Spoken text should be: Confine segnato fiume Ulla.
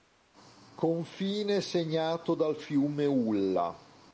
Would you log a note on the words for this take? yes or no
yes